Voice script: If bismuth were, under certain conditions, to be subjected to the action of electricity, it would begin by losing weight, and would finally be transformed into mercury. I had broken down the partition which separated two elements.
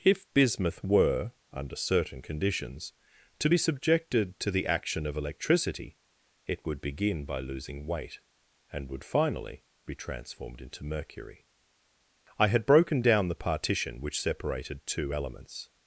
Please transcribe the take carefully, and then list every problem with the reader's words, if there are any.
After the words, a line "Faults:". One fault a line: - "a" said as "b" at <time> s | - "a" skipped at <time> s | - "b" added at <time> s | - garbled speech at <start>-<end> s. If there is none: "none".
If bismuth were, under certain conditions, to be subjected to the action of electricity, it would begin by losing weight, and would finally be transformed into mercury. I had broken down the partition which separated two elements.
Faults:
none